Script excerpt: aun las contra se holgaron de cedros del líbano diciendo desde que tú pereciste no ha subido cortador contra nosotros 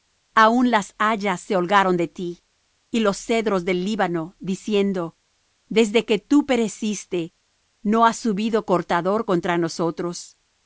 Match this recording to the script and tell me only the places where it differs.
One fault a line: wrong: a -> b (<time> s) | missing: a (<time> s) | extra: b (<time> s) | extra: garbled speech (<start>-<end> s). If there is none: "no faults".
wrong: contra -> hayas (1.0 s)
extra: ti y los (2.1 s)